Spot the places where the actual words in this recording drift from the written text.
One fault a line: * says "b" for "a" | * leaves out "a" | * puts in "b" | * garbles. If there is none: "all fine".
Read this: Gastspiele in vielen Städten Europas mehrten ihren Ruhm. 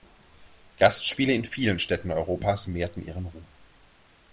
all fine